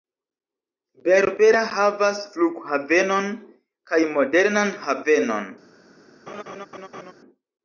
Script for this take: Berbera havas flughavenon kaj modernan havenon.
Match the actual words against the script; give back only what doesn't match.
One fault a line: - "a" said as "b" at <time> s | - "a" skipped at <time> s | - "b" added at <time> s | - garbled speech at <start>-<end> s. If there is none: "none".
none